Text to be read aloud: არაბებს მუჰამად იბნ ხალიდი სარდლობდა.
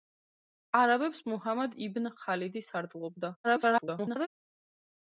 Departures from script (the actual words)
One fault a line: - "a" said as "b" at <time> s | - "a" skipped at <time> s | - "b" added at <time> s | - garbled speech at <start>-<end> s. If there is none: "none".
- garbled speech at 3.4-4.3 s